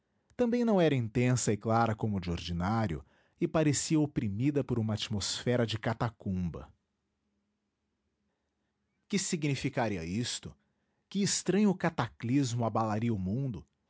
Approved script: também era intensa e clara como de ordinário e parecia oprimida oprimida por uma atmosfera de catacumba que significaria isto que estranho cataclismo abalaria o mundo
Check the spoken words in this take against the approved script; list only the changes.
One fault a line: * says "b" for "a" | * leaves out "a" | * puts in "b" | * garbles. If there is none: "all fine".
* puts in "não"
* leaves out "oprimida"